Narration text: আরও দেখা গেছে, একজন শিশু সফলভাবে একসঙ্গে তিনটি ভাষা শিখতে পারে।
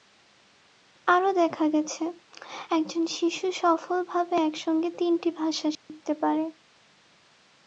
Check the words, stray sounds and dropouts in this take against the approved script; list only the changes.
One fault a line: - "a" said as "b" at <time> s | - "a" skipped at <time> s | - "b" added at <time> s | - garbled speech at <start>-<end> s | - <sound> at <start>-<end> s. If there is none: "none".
- dropout at 5.7-5.9 s